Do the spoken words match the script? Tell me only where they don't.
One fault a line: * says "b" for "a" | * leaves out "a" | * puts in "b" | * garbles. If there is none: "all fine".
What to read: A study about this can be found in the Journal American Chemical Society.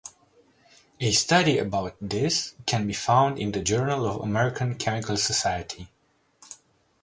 * puts in "of"